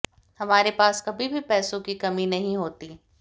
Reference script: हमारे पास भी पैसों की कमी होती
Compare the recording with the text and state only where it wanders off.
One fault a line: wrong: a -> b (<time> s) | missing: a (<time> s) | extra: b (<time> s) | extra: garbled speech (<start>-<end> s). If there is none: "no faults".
extra: कभी (1.1 s)
extra: नहीं (2.3 s)